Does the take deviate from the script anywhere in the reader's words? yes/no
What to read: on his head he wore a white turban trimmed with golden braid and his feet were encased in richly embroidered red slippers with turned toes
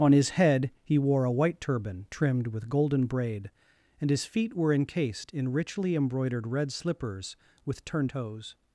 no